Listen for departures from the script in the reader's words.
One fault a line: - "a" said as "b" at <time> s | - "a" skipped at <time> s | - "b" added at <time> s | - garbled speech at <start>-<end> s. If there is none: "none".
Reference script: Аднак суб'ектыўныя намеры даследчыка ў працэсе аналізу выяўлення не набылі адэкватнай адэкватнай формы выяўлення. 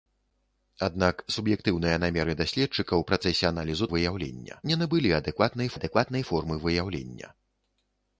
none